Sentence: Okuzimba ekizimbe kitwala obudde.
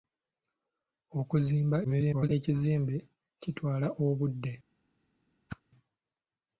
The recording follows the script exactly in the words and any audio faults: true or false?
false